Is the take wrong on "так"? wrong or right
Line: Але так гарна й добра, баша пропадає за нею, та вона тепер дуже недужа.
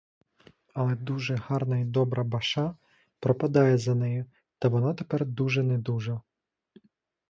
wrong